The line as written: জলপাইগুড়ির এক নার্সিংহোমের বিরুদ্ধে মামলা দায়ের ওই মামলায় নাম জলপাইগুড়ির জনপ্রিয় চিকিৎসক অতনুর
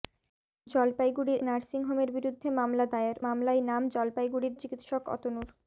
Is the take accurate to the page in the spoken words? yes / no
no